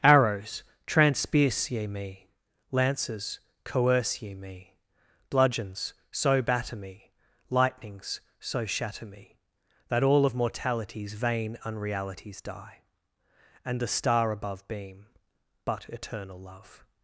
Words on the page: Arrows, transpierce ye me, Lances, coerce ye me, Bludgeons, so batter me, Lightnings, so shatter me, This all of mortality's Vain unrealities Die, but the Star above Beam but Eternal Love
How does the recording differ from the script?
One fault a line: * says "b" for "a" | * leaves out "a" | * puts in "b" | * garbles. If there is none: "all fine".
* says "That" for "This"
* says "and" for "but"